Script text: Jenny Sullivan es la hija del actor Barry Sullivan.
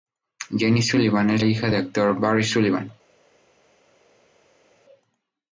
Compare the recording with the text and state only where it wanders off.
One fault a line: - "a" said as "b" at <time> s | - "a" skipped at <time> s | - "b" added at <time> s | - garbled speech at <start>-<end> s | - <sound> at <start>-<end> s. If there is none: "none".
- "la" skipped at 1.4 s